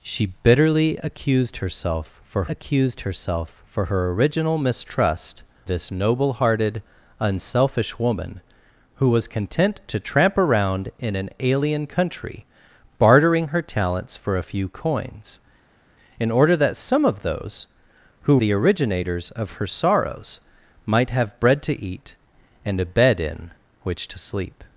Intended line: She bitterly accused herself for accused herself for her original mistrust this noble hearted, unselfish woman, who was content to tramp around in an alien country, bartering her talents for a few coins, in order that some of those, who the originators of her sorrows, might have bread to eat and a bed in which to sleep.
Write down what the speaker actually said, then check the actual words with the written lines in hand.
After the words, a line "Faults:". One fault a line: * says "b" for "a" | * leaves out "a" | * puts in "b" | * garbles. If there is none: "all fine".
She bitterly accused herself for accused herself for her original mistrust this noble hearted, unselfish woman, who was content to tramp around in an alien country, bartering her talents for a few coins, in order that some of those, who the originators of her sorrows, might have bread to eat and a bed in which to sleep.
Faults:
all fine